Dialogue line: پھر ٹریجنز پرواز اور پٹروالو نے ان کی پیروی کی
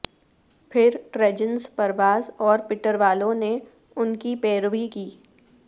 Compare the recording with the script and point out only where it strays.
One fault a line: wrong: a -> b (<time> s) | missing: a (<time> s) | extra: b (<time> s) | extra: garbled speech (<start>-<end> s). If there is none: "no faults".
no faults